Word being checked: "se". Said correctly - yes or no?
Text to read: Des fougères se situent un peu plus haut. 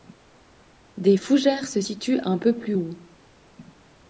yes